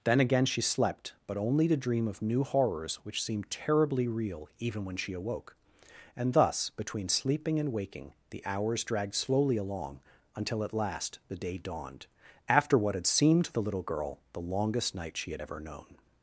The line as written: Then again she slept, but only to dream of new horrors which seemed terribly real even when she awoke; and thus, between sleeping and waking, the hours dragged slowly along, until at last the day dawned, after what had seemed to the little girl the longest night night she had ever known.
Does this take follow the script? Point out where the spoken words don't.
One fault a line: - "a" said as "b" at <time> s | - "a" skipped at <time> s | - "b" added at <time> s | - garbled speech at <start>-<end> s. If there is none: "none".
- "night" skipped at 15.2 s